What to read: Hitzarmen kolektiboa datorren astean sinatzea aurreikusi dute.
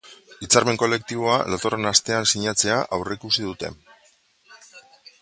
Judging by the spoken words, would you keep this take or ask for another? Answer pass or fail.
pass